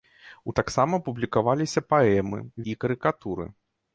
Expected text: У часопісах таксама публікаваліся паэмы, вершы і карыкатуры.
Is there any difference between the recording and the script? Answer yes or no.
yes